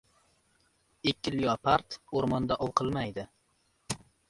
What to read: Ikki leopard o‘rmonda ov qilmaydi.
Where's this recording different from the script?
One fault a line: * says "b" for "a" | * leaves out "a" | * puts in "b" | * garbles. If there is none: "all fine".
all fine